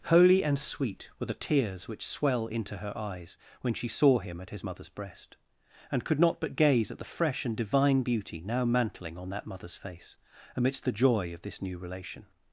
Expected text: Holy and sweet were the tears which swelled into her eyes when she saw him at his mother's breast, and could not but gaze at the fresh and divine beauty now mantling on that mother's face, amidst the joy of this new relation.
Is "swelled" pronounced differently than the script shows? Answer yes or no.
yes